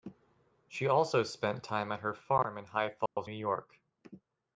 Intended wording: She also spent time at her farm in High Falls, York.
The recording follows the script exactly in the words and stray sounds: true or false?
false